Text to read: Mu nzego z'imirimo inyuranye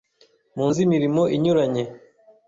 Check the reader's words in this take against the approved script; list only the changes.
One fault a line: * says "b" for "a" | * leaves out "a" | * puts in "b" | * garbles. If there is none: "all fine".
* leaves out "nzego"